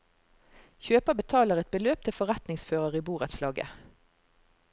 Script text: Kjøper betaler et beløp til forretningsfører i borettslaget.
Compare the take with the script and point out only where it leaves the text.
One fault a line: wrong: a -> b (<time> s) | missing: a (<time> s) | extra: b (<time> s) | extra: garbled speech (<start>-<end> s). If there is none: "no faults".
no faults